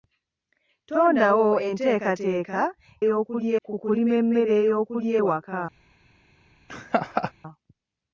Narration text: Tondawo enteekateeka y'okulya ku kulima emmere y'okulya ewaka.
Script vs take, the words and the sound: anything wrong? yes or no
yes